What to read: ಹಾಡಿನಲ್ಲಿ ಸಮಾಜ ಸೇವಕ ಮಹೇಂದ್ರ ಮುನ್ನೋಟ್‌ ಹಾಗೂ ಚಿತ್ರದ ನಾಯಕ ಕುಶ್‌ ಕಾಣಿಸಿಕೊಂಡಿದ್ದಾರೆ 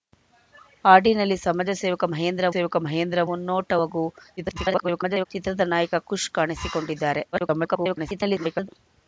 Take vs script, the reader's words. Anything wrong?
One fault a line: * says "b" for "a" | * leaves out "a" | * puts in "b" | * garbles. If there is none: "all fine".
* puts in "ಸೇವಕ ಮಹೇಂದ್ರ"
* garbles
* garbles